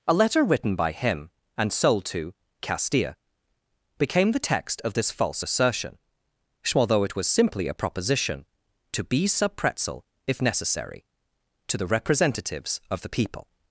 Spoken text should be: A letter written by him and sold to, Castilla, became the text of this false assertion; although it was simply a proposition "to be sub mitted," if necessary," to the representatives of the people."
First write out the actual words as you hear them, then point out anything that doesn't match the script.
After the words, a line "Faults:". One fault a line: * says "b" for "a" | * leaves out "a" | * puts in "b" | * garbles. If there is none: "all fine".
A letter written by him and sold to, Castilla, became the text of this false assertion; although it was simply a proposition "to be sub pretzel," if necessary," to the representatives of the people."
Faults:
* says "pretzel" for "mitted"